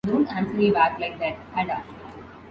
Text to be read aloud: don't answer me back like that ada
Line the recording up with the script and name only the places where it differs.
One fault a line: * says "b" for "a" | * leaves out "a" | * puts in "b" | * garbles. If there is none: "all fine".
all fine